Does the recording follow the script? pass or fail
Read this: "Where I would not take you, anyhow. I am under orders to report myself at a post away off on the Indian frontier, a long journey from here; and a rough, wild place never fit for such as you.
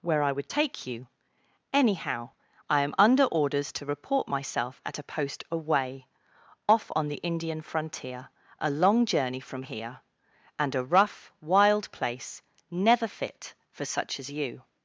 fail